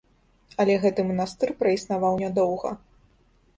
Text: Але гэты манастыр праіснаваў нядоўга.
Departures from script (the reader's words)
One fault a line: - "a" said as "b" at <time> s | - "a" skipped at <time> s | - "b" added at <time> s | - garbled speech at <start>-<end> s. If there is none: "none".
none